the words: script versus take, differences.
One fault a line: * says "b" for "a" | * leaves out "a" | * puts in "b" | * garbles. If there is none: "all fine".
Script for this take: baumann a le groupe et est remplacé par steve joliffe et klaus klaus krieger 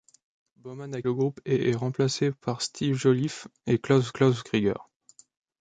all fine